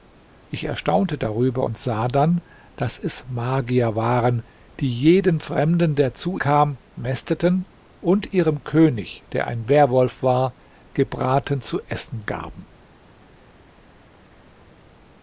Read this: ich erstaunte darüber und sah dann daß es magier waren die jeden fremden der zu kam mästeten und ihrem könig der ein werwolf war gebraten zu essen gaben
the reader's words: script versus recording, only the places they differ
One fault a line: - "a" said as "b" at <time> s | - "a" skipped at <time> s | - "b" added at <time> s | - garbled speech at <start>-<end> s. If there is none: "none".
none